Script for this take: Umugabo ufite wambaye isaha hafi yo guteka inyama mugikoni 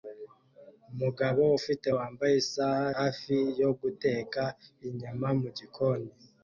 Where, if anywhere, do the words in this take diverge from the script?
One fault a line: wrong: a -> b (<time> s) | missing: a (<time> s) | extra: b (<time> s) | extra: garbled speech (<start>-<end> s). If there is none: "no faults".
no faults